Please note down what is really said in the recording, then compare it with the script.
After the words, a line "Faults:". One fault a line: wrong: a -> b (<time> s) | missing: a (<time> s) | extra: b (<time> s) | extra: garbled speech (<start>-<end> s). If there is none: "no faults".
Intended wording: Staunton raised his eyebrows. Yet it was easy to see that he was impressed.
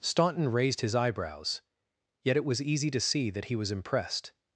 Staunton raised his eyebrows. Yet it was easy to see that he was impressed.
Faults:
no faults